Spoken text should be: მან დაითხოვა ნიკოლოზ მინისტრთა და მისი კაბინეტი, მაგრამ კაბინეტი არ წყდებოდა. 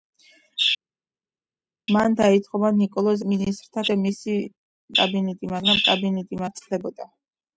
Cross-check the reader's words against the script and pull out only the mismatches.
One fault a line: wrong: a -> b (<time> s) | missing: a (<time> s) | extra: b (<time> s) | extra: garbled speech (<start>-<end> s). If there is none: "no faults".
no faults